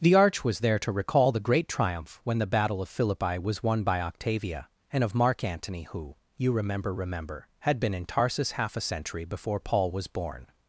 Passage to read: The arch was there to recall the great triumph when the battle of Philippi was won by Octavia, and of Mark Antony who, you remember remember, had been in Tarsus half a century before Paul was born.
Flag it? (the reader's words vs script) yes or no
no